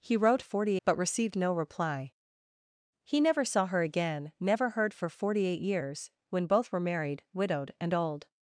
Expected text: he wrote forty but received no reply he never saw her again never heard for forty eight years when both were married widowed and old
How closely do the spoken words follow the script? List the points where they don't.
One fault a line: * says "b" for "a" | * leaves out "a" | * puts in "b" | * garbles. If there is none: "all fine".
all fine